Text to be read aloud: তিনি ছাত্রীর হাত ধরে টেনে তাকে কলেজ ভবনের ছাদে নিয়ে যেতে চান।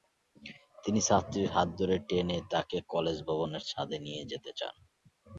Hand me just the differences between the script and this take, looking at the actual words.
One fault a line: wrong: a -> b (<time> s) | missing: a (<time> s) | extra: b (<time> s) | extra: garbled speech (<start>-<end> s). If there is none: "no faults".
no faults